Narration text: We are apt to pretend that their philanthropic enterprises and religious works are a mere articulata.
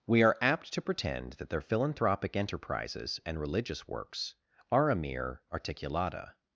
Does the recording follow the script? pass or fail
pass